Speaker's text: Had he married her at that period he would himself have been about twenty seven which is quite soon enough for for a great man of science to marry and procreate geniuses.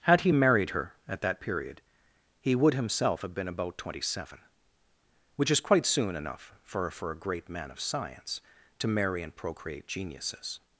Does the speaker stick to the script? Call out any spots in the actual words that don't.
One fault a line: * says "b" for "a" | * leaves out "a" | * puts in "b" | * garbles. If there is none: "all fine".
all fine